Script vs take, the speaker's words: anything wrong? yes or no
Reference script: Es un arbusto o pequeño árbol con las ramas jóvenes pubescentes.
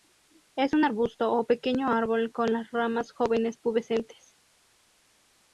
no